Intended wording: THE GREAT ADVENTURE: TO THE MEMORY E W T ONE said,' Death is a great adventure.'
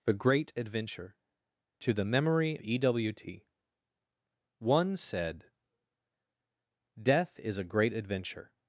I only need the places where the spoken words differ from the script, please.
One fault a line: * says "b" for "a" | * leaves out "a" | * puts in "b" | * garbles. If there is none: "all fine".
all fine